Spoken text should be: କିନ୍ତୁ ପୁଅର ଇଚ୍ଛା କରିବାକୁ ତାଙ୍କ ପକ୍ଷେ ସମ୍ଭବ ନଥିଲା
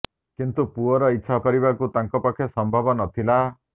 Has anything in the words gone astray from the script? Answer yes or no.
no